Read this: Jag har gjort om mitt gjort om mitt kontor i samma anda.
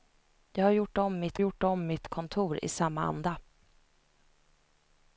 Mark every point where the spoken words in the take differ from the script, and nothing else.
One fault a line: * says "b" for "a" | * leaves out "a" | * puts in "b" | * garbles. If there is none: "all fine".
all fine